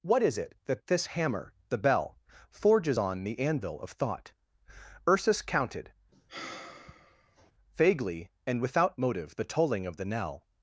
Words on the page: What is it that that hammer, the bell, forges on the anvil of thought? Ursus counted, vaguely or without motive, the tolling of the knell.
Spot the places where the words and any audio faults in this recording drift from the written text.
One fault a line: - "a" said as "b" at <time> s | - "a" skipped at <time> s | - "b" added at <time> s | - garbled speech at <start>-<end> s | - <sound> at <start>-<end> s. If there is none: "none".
- "that" said as "this" at 0.9 s
- sigh at 6.1-7.5 s
- "or" said as "and" at 8.5 s